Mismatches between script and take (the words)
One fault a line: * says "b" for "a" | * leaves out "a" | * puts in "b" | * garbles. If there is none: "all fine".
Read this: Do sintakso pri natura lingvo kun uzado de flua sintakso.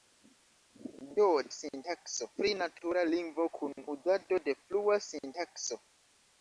all fine